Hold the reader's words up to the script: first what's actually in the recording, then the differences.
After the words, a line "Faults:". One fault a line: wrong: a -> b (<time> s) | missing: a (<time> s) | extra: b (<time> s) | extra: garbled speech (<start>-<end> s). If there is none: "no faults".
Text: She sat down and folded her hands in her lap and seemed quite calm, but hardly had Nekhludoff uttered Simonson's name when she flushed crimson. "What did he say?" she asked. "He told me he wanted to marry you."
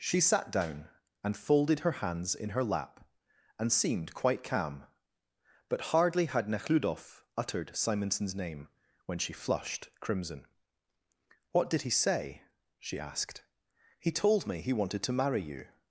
She sat down and folded her hands in her lap and seemed quite calm, but hardly had Nekhludoff uttered Simonson's name when she flushed crimson. "What did he say?" she asked. "He told me he wanted to marry you."
Faults:
no faults